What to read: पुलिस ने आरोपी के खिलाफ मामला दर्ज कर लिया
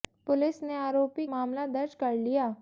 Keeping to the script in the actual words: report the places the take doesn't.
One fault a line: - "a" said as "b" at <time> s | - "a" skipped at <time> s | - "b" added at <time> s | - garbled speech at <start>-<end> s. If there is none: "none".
- "के खिलाफ" skipped at 1.3 s